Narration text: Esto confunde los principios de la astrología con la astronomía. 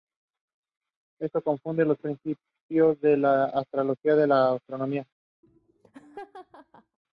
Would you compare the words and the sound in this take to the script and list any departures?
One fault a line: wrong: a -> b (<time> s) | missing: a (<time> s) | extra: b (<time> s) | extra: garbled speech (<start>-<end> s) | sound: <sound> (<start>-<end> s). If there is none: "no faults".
sound: laugh (5.4-7.0 s)